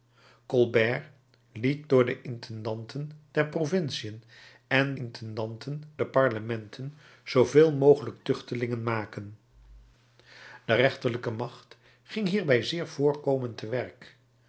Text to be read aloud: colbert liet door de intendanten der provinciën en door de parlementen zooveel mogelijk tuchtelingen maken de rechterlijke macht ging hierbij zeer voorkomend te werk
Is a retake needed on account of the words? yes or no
yes